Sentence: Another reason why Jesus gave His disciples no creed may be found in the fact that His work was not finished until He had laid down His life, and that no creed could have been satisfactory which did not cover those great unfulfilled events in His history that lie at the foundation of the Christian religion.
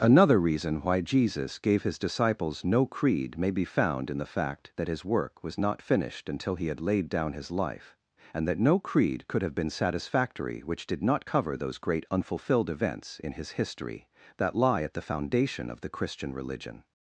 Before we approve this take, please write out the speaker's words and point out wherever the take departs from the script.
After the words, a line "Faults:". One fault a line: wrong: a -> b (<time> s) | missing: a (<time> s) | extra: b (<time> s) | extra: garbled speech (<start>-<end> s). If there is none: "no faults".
Another reason why Jesus gave His disciples no creed may be found in the fact that His work was not finished until He had laid down His life, and that no creed could have been satisfactory which did not cover those great unfulfilled events in His history that lie at the foundation of the Christian religion.
Faults:
no faults